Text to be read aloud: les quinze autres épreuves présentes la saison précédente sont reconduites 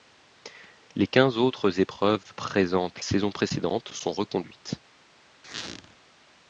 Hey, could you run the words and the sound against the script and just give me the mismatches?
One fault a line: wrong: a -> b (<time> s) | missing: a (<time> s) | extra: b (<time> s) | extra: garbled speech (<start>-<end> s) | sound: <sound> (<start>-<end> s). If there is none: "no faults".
missing: la (3.0 s)
sound: squeak (5.4-6.0 s)